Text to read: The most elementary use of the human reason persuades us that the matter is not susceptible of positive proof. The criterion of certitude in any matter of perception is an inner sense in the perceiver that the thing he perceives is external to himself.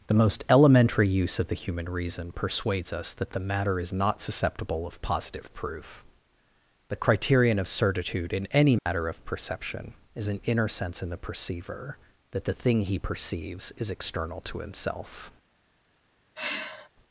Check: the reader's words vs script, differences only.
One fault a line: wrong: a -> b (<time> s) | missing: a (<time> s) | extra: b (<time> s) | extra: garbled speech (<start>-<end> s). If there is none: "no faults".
no faults